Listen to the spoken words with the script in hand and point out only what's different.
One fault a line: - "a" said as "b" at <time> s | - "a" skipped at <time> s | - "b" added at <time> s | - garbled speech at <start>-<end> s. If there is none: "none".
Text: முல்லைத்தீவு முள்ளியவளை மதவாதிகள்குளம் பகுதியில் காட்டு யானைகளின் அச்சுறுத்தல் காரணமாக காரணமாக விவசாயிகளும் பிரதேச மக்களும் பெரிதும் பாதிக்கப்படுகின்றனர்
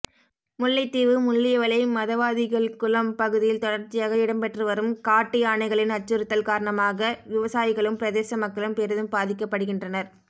- "தொடர்ச்சியாக இடம்பெற்றுவரும்" added at 3.6 s
- "காரணமாக" skipped at 7.1 s